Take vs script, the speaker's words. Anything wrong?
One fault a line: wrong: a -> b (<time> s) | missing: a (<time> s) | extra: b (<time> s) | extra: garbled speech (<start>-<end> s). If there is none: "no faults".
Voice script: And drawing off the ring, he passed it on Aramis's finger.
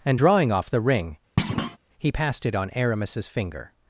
no faults